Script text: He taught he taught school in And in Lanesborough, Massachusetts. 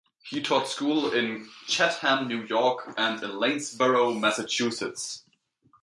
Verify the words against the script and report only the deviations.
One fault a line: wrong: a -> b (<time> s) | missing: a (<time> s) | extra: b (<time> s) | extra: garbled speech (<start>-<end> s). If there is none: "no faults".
wrong: he taught school in -> school in Chatham New York (0.7 s)